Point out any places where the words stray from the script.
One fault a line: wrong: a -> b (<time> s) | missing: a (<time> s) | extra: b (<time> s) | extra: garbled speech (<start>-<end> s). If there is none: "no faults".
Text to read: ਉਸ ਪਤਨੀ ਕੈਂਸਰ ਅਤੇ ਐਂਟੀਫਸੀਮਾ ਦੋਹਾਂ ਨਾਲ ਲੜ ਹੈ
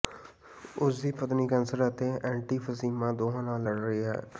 extra: ਦੀ (1.0 s)
extra: ਰਹੀ (3.8 s)